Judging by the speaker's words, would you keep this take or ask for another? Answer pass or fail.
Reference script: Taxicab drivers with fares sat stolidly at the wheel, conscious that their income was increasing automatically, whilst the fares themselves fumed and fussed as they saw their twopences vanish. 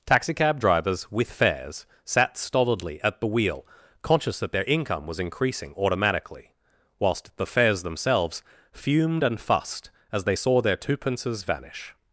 pass